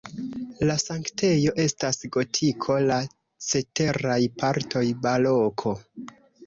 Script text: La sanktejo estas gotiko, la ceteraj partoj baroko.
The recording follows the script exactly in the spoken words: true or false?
true